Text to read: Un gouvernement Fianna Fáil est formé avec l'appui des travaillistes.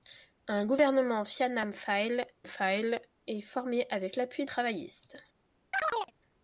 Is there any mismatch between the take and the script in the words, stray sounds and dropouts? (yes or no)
yes